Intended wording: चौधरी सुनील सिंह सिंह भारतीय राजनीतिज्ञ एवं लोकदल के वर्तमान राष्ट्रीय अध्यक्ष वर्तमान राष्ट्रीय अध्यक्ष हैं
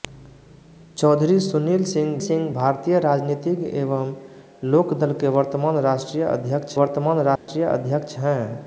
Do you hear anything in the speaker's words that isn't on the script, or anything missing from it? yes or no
no